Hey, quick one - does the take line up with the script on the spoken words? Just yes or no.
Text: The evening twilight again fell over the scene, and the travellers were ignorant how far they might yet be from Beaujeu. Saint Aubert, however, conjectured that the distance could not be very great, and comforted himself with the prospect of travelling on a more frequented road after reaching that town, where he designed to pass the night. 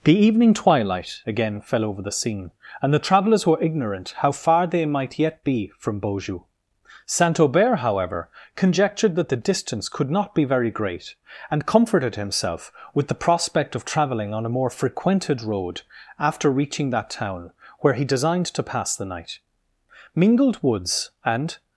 no